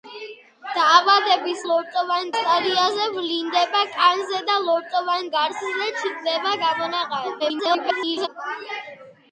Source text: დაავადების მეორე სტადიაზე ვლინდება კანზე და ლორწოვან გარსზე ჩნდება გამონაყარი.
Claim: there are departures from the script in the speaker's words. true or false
true